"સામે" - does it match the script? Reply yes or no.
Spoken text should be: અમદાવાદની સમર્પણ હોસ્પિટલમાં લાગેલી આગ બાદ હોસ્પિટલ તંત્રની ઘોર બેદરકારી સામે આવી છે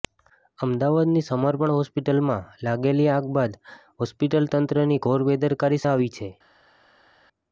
no